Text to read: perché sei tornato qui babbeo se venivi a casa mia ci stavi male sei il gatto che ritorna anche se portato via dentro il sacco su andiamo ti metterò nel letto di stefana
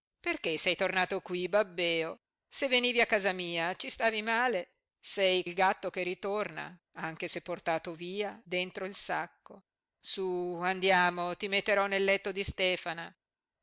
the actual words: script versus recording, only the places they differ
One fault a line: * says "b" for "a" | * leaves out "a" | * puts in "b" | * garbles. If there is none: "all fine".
all fine